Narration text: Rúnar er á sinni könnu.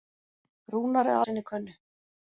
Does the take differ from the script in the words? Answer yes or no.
no